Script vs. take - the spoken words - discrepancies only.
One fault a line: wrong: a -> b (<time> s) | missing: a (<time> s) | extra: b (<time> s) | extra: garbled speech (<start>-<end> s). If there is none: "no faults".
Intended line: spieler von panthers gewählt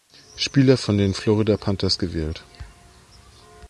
extra: den florida (1.0 s)